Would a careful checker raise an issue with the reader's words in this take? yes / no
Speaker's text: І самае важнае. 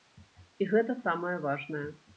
yes